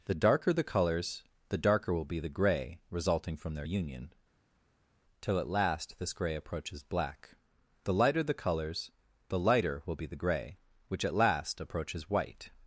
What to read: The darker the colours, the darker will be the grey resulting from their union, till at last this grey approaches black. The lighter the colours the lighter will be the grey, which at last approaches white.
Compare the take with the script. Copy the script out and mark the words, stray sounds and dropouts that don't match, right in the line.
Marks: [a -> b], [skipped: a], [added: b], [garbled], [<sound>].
The darker the colours, the darker will be the grey resulting from their union, till at last this grey approaches black. The lighter the colours the lighter will be the grey, which at last approaches white.